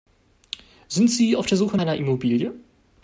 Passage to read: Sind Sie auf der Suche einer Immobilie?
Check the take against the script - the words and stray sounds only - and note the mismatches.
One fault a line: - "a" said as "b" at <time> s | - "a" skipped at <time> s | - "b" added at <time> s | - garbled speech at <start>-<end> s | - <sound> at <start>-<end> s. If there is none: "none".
none